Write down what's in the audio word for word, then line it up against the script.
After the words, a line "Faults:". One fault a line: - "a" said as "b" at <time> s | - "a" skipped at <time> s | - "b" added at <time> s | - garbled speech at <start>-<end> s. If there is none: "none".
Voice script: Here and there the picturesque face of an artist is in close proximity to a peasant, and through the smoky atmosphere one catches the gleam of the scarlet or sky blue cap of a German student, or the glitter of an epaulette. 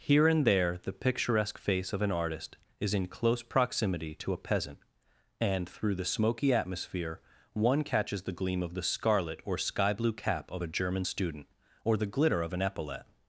Here and there the picturesque face of an artist is in close proximity to a peasant, and through the smoky atmosphere one catches the gleam of the scarlet or sky blue cap of a German student, or the glitter of an epaulette.
Faults:
none